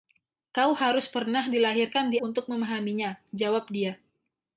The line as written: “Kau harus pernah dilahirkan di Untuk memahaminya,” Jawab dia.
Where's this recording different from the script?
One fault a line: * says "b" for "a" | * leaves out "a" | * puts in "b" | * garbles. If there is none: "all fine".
all fine